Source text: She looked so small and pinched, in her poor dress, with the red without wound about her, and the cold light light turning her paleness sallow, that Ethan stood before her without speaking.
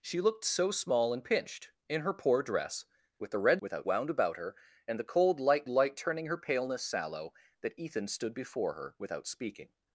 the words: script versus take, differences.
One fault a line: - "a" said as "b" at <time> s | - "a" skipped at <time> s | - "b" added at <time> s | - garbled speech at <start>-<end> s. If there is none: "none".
none